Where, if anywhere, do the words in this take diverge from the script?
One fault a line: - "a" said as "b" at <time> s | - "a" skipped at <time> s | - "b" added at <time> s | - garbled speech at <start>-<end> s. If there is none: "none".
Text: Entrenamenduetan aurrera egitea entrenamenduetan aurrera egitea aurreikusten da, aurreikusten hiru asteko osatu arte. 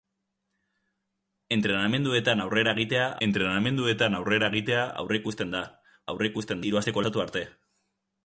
none